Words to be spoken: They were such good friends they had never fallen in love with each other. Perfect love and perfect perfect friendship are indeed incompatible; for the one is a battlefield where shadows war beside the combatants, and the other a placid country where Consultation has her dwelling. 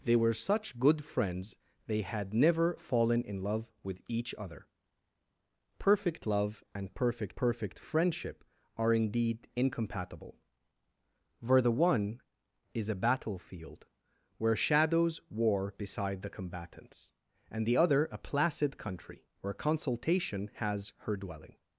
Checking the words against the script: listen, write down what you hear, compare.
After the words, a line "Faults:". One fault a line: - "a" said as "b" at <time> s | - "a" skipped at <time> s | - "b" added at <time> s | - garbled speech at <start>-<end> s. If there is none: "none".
They were such good friends they had never fallen in love with each other. Perfect love and perfect perfect friendship are indeed incompatible; for the one is a battlefield where shadows war beside the combatants, and the other a placid country where Consultation has her dwelling.
Faults:
none